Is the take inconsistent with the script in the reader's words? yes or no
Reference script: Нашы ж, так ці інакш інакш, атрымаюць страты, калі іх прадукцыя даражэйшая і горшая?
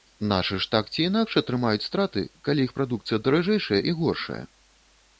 yes